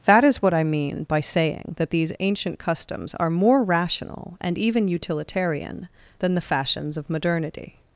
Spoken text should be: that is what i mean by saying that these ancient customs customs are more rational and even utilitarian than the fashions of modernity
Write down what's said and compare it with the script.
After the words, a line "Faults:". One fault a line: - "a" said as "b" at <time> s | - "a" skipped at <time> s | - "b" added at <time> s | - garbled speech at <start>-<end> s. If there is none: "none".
that is what i mean by saying that these ancient customs are more rational and even utilitarian than the fashions of modernity
Faults:
- "customs" skipped at 3.1 s